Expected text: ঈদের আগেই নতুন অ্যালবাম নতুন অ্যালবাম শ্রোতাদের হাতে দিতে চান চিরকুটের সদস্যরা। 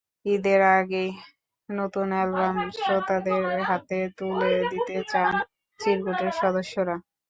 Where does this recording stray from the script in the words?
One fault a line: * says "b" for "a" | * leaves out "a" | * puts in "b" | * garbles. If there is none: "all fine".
* leaves out "নতুন অ্যালবাম"
* puts in "তুলে"